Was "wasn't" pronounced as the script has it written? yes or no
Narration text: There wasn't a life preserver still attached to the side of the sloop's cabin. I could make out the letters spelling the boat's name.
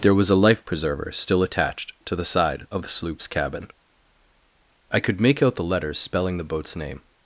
no